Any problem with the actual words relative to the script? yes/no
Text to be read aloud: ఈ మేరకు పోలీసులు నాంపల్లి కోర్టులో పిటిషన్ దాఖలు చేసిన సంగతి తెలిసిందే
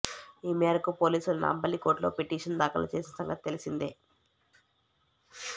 no